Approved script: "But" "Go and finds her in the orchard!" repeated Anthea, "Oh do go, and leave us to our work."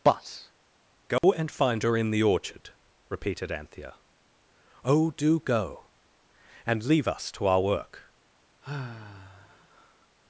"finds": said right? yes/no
no